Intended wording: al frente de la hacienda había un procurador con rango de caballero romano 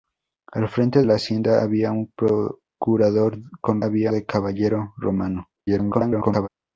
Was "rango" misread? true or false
true